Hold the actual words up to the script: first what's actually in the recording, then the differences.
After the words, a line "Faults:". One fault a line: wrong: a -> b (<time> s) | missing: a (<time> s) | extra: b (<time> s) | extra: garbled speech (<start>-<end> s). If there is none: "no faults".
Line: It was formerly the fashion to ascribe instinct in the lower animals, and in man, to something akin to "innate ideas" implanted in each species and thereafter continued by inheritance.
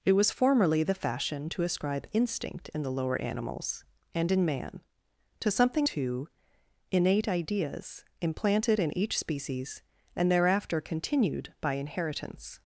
It was formerly the fashion to ascribe instinct in the lower animals, and in man, to something to "innate ideas" implanted in each species and thereafter continued by inheritance.
Faults:
missing: akin (5.9 s)